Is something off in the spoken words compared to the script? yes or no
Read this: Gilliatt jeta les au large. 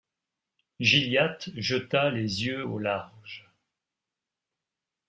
yes